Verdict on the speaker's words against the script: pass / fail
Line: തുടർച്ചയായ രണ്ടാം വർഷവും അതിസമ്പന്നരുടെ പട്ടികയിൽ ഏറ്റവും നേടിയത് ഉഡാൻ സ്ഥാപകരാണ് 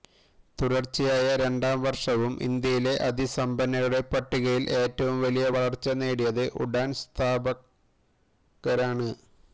fail